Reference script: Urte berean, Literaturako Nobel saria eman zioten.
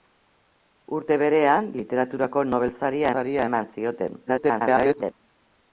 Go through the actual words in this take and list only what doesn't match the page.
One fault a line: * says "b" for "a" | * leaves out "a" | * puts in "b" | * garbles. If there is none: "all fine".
* puts in "saria"
* garbles